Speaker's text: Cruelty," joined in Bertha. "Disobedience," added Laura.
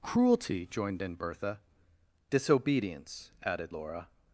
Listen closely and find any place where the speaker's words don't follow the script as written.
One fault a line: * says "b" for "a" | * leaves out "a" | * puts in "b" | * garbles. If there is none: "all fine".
all fine